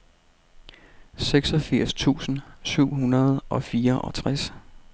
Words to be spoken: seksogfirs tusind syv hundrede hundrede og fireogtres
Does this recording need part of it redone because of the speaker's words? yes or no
yes